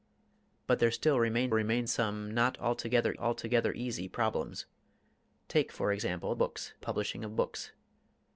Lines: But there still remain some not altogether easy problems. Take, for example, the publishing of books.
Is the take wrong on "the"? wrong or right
wrong